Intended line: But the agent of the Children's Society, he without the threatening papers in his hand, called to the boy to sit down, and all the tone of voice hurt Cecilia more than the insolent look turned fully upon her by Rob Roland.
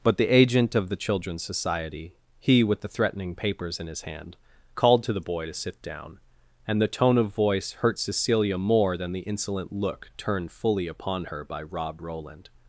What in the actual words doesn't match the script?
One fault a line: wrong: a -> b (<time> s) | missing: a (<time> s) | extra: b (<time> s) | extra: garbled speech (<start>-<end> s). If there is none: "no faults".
wrong: without -> with (2.6 s)
missing: all (6.8 s)